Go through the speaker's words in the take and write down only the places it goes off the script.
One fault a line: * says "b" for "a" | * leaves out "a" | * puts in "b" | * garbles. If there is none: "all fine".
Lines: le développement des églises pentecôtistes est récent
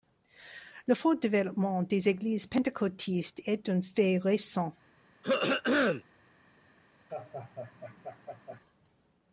* puts in "fort"
* puts in "un fait"